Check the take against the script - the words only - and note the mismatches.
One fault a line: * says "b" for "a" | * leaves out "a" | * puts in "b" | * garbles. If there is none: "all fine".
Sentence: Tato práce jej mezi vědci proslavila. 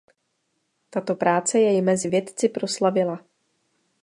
all fine